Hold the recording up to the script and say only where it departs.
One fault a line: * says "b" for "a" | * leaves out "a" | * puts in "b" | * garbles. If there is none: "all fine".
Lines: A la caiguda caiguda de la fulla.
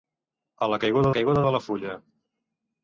all fine